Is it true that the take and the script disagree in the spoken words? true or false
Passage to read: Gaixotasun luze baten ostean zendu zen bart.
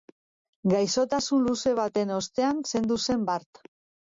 false